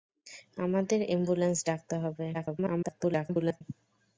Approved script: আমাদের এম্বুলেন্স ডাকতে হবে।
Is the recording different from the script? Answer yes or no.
yes